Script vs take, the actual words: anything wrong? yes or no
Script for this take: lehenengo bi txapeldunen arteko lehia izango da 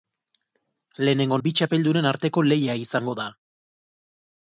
no